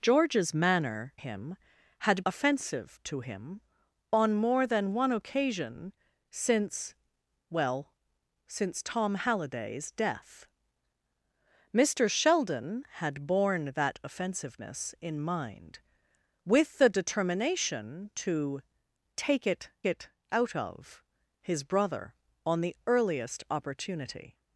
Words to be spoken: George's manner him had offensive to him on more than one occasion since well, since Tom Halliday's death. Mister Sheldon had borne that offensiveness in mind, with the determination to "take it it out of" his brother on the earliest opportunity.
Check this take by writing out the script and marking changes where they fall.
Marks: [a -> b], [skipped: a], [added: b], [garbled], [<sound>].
George's manner him had offensive to him on more than one occasion since well, since Tom Halliday's death. Mister Sheldon had borne that offensiveness in mind, with the determination to "take it it out of" his brother on the earliest opportunity.